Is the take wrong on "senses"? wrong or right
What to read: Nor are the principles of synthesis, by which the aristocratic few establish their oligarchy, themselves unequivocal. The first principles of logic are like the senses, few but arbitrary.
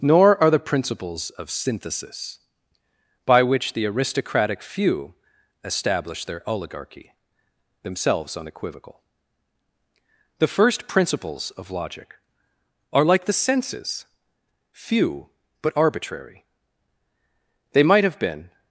right